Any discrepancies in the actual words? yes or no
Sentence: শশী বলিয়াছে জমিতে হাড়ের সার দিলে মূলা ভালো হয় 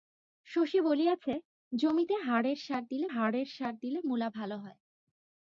yes